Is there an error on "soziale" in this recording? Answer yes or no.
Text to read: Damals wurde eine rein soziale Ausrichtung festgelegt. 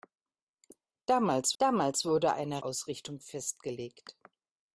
yes